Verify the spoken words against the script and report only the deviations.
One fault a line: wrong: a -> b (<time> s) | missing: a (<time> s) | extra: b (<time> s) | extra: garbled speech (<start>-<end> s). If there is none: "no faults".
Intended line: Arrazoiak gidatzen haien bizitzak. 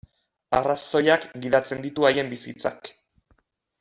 extra: ditu (1.9 s)